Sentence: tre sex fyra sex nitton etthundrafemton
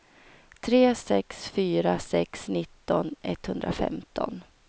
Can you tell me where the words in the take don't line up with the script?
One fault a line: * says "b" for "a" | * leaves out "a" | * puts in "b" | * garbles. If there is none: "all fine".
all fine